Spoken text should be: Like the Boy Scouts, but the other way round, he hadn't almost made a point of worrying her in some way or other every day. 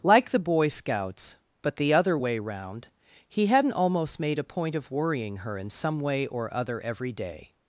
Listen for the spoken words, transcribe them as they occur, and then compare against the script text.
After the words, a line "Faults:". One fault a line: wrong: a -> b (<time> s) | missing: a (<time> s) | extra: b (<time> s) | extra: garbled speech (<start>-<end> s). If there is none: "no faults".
Like the Boy Scouts, but the other way round, he hadn't almost made a point of worrying her in some way or other every day.
Faults:
no faults